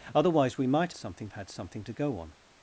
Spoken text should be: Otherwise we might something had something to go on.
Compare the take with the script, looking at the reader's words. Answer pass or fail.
pass